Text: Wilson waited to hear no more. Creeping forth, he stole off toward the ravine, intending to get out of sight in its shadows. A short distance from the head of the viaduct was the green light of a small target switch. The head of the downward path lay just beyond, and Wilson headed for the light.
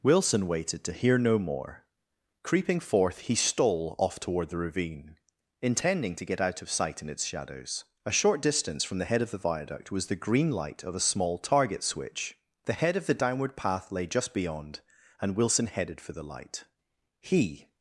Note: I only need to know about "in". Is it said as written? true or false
true